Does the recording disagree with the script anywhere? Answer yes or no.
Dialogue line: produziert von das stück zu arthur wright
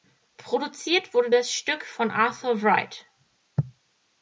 yes